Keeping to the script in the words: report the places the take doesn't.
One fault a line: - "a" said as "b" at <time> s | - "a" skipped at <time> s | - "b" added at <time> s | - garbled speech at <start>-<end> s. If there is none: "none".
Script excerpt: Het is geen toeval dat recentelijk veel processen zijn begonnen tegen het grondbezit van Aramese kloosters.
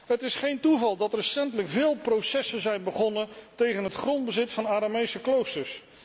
none